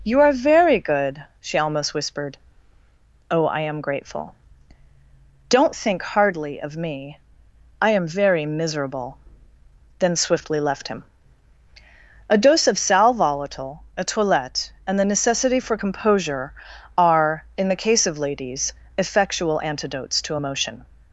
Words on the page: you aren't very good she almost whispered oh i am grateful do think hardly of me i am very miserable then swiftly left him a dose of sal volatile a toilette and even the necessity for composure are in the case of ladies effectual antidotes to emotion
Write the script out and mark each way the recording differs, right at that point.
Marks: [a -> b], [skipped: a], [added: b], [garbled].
you [aren't -> are] very good she almost whispered oh i am grateful [do -> don't] think hardly of me i am very miserable then swiftly left him a dose of sal volatile a toilette and [skipped: even] the necessity for composure are in the case of ladies effectual antidotes to emotion